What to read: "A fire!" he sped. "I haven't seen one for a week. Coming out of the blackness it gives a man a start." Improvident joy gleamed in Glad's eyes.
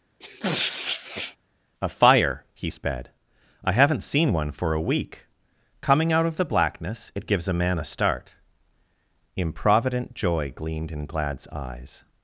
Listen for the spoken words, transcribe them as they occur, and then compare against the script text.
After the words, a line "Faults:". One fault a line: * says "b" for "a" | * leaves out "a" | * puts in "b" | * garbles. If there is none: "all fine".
"A fire!" he sped. "I haven't seen one for a week. Coming out of the blackness it gives a man a start." Improvident joy gleamed in Glad's eyes.
Faults:
all fine